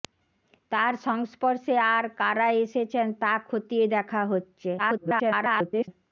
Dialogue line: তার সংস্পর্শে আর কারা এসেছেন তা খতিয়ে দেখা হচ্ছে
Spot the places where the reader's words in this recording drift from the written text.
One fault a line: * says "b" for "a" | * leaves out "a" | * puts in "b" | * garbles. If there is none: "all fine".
* garbles